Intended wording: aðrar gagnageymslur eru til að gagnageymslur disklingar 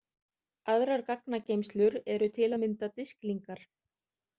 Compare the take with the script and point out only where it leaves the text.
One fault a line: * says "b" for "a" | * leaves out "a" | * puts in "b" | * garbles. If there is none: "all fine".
* says "mynda" for "gagnageymslur"